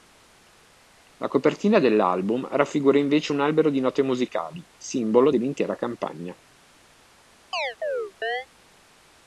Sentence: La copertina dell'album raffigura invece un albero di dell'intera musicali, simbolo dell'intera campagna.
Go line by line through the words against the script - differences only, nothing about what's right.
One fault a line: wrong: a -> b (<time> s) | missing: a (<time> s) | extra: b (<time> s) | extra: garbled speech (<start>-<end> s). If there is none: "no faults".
wrong: dell'intera -> note (3.8 s)